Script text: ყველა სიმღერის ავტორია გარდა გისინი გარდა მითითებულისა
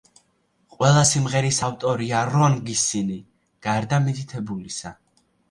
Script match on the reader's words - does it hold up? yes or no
no